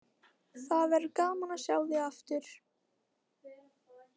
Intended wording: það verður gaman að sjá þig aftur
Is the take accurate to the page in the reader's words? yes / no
yes